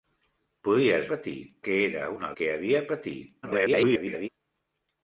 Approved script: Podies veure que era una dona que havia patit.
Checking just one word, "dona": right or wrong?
wrong